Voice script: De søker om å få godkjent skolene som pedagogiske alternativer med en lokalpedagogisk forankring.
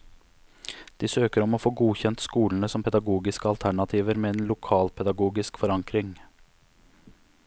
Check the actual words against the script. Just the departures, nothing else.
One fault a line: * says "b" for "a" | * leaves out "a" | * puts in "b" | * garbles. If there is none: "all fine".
all fine